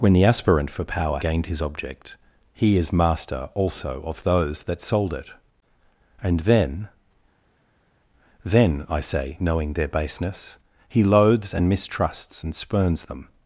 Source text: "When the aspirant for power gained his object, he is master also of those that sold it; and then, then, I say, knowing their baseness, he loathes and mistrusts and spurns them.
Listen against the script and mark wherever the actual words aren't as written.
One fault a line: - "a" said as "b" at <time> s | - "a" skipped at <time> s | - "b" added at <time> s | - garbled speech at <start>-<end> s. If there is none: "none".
none